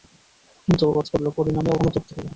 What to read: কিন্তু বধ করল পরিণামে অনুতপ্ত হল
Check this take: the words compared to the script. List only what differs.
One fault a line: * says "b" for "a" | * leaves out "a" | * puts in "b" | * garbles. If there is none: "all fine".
all fine